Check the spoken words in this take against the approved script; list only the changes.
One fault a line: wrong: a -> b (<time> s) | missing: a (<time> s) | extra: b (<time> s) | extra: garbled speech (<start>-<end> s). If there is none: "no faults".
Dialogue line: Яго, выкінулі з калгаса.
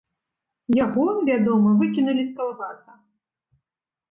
extra: вядома (1.3 s)